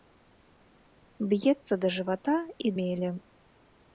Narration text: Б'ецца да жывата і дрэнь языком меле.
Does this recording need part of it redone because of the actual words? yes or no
yes